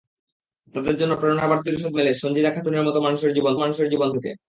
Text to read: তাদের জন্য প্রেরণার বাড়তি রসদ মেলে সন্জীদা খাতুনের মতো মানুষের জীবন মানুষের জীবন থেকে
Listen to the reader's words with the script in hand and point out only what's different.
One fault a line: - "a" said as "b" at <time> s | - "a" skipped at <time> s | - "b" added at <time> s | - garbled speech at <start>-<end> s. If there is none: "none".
none